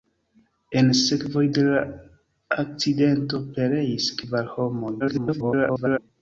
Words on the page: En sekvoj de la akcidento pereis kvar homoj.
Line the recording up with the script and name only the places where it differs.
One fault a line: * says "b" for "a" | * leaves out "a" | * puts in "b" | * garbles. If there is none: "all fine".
* garbles